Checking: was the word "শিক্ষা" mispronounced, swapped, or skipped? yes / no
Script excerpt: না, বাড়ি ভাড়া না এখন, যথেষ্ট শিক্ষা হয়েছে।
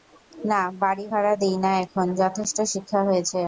no